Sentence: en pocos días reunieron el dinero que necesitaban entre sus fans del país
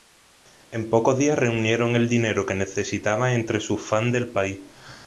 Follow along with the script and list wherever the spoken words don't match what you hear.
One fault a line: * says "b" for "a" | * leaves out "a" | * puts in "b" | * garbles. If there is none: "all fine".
all fine